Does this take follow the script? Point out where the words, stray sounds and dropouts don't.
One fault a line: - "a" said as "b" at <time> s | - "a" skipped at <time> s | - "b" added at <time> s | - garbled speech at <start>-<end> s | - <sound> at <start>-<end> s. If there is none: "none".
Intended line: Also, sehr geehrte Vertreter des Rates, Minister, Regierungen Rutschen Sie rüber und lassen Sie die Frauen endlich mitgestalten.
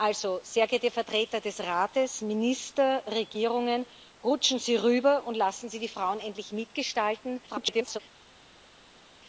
- garbled speech at 7.5-8.0 s